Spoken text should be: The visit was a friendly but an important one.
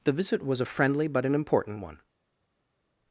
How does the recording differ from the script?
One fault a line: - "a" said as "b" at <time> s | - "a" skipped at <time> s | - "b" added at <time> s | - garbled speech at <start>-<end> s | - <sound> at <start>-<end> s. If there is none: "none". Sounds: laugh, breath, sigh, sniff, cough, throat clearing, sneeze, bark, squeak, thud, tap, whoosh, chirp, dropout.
none